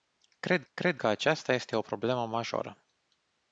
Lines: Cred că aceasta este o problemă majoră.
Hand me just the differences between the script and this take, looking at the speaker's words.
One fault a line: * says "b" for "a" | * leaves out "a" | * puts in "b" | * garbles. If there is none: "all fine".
* puts in "cred"